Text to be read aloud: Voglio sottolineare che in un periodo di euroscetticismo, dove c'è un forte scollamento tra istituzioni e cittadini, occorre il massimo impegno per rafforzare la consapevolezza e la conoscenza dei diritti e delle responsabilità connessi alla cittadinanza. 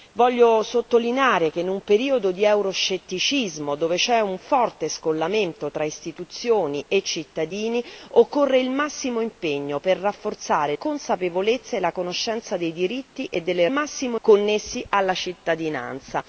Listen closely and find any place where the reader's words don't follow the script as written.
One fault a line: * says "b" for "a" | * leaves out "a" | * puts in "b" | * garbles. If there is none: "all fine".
* leaves out "la"
* says "massimo" for "responsabilità"